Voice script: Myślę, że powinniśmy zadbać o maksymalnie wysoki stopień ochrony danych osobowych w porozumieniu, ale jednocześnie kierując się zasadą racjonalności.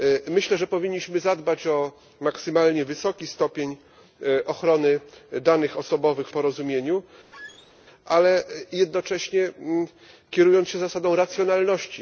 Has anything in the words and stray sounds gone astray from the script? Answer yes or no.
yes